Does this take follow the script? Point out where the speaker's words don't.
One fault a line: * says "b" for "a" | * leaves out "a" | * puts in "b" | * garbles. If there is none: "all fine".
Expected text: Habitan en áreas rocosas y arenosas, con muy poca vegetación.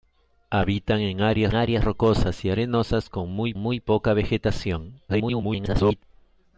* puts in "áreas"
* puts in "muy"
* garbles